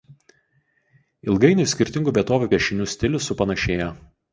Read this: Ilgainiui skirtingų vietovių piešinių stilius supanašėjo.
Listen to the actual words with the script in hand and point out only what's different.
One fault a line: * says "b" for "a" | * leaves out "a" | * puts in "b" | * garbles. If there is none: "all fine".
all fine